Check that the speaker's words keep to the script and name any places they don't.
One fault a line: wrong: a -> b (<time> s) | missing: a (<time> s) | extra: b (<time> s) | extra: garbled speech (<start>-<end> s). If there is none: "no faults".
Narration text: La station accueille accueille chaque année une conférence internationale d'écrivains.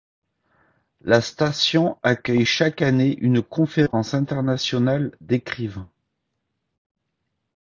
missing: accueille (2.5 s)